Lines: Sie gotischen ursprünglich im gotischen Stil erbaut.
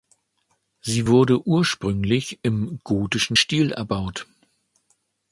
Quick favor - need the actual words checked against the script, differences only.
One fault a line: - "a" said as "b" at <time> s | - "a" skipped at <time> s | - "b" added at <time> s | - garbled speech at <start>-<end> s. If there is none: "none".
- "gotischen" said as "wurde" at 1.1 s